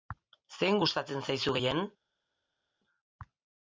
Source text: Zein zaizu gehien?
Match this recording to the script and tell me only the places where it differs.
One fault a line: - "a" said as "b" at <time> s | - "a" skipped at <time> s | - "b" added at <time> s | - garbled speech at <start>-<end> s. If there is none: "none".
- "gustatzen" added at 0.8 s